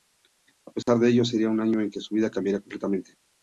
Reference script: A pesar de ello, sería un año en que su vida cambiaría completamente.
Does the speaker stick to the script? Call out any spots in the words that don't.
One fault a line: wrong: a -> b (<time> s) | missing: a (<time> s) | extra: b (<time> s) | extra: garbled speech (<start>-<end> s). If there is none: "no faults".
no faults